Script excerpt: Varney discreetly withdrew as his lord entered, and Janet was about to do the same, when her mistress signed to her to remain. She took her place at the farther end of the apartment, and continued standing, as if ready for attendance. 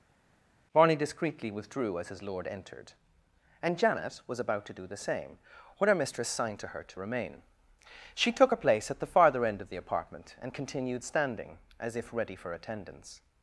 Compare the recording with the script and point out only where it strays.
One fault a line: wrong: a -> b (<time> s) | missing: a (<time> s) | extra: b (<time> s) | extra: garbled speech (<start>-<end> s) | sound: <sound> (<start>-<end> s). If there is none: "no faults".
wrong: Varney -> Barney (0.7 s)